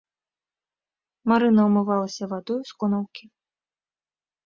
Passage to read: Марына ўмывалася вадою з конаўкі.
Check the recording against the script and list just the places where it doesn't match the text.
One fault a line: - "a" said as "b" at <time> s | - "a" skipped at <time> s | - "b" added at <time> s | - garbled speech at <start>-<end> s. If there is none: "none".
none